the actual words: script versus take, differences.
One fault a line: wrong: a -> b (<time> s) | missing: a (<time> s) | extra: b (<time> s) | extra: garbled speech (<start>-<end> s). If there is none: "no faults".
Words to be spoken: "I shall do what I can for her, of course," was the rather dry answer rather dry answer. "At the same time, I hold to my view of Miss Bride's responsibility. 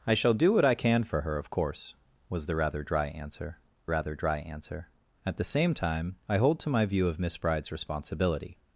no faults